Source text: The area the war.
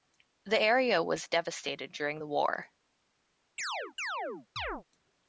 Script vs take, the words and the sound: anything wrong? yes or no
yes